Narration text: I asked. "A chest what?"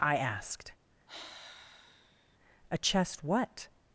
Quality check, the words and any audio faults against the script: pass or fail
fail